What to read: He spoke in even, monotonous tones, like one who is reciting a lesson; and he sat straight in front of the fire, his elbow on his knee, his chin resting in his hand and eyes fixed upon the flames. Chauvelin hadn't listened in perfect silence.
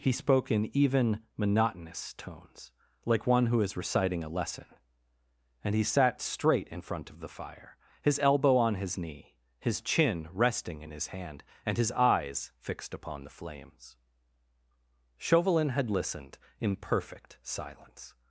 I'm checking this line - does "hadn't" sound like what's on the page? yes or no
no